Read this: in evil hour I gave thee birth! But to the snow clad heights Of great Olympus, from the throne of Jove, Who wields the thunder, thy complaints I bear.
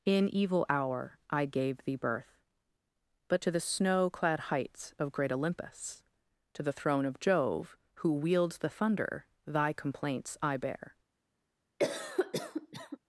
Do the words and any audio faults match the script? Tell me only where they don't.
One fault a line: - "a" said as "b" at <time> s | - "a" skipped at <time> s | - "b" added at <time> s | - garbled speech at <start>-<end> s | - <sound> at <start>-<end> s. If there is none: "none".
- "from" said as "to" at 6.5 s
- cough at 11.8-13.0 s